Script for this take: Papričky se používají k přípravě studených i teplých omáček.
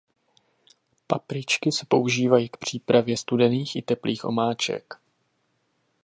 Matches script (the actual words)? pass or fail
pass